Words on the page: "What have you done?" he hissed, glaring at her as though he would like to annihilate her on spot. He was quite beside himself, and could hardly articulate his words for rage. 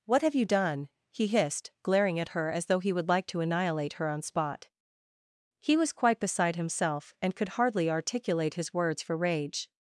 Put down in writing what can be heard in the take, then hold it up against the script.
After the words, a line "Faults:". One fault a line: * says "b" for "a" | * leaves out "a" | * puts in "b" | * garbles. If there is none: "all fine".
"What have you done?" he hissed, glaring at her as though he would like to annihilate her on spot. He was quite beside himself, and could hardly articulate his words for rage.
Faults:
all fine